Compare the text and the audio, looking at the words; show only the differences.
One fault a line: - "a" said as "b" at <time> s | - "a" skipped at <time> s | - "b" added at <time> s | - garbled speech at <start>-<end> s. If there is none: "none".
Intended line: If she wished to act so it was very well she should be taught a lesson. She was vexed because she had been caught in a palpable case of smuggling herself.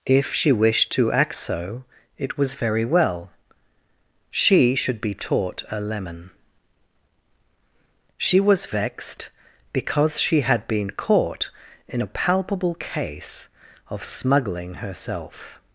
- "lesson" said as "lemon" at 5.8 s